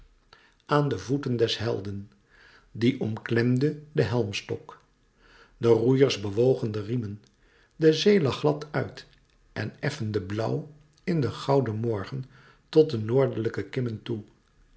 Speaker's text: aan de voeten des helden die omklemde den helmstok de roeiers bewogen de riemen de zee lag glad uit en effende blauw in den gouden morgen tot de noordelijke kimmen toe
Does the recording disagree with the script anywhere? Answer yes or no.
no